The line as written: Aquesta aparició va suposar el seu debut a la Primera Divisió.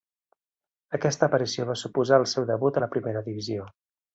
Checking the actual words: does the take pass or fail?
pass